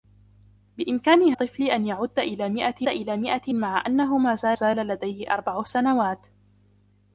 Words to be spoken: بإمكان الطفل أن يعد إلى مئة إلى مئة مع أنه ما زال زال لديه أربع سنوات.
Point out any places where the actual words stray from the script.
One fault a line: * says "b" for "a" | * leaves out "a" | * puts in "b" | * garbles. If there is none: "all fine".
all fine